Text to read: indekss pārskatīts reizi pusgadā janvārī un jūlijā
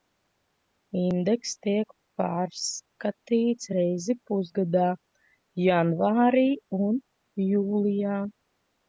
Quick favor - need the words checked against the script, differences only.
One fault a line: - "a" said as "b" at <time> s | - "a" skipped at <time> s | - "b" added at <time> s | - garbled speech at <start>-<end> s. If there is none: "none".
- "tiek" added at 1.6 s